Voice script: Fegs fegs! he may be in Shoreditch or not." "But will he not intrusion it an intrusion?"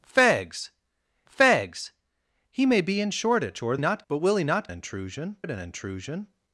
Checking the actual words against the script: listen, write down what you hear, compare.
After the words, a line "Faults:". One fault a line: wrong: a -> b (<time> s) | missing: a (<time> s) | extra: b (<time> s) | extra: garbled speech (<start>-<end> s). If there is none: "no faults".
Fegs fegs! he may be in Shoreditch or not." "But will he not intrusion it an intrusion?"
Faults:
no faults